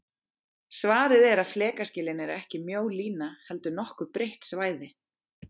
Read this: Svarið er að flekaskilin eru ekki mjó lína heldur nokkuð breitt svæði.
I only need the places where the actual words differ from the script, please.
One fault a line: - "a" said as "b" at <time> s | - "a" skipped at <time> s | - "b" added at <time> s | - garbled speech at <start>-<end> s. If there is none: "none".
none